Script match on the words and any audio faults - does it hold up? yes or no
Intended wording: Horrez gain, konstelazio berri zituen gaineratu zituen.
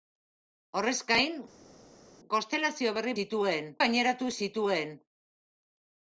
yes